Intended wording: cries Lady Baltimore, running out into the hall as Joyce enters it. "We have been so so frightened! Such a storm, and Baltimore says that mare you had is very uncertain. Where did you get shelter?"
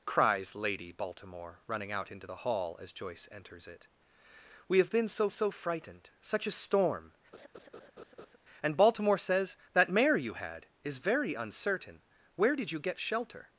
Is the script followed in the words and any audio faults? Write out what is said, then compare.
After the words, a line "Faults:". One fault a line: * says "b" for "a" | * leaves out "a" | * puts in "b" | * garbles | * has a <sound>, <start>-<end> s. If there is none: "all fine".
cries Lady Baltimore, running out into the hall as Joyce enters it. "We have been so so frightened! Such a storm, and Baltimore says that mare you had is very uncertain. Where did you get shelter?"
Faults:
* has a laugh, 7.3-8.4 s